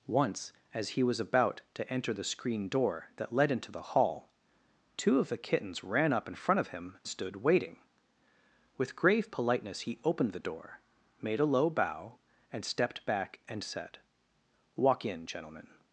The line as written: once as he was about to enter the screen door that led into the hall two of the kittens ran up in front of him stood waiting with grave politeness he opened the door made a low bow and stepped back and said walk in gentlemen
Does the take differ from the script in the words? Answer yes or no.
no